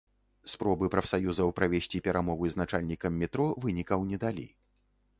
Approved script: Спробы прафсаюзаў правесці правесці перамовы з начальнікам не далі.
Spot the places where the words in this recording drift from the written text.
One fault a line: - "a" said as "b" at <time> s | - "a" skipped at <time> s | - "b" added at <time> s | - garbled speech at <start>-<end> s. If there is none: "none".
- "правесці" skipped at 2.0 s
- "метро вынікаў" added at 3.2 s